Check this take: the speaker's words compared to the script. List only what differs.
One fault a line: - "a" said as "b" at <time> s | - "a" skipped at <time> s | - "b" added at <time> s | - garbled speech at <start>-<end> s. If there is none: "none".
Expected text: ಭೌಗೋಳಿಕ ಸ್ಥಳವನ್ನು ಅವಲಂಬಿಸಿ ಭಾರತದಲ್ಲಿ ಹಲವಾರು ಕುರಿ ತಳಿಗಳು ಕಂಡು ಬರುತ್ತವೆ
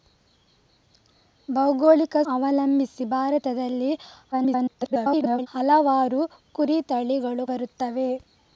- "ಸ್ಥಳವನ್ನು" skipped at 2.1 s
- garbled speech at 4.3-5.5 s
- "ಕಂಡು" skipped at 7.5 s